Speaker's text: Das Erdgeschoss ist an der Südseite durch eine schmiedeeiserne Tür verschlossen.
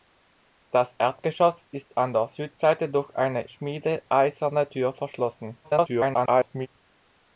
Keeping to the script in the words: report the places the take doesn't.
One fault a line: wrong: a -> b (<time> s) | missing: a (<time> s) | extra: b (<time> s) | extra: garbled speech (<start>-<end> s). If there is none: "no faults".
extra: garbled speech (5.6-6.7 s)